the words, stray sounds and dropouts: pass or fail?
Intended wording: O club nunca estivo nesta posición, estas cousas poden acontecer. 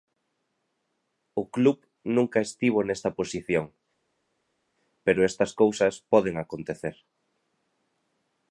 fail